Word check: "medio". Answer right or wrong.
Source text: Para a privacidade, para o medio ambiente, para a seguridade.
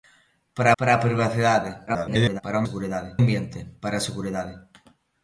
wrong